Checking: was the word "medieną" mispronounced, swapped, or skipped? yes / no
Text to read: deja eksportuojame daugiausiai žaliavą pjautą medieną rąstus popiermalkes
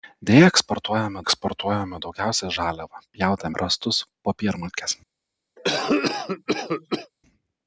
yes